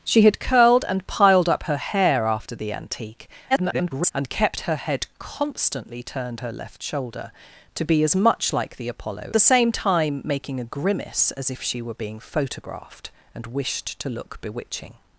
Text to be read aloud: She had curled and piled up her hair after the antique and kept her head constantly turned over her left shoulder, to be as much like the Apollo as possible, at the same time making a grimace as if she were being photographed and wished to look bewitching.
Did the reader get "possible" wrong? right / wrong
wrong